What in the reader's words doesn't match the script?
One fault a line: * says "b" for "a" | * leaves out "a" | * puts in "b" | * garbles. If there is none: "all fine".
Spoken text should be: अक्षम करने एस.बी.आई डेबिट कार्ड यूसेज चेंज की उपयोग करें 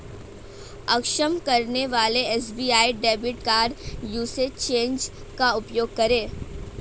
* puts in "वाले"
* says "का" for "की"